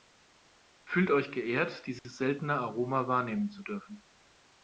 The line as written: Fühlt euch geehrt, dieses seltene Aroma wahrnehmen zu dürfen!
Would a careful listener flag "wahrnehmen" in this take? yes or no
no